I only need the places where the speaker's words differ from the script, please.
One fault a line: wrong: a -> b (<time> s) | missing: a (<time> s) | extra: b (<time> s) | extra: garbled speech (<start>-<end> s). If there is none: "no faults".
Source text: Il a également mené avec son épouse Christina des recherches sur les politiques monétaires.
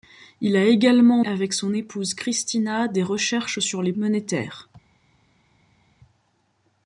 missing: mené (1.2 s)
missing: politiques (3.9 s)